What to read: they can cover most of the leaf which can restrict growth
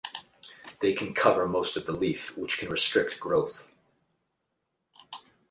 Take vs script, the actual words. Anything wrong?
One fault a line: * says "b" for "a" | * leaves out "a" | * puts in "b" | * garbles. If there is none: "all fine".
all fine